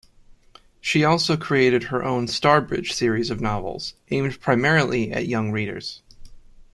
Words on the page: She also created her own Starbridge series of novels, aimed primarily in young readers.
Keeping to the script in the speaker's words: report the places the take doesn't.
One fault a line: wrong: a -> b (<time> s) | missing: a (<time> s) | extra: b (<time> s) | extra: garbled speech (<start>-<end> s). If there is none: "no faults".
wrong: in -> at (5.1 s)